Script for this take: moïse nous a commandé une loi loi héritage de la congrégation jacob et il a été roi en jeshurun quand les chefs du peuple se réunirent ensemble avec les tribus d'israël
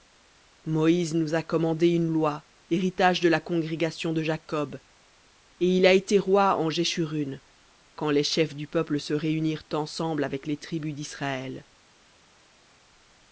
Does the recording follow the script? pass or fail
fail